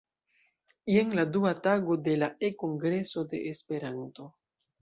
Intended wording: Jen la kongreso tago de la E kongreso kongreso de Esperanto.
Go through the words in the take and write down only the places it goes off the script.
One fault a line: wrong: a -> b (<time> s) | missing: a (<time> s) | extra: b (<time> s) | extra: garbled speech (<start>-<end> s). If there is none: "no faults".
wrong: kongreso -> dua (1.4 s)
missing: kongreso (3.3 s)